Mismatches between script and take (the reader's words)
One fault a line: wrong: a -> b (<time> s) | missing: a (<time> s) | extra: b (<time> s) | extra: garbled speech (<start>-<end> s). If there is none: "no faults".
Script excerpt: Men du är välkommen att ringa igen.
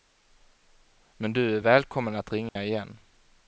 no faults